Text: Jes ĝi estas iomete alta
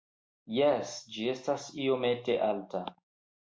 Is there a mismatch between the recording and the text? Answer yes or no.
no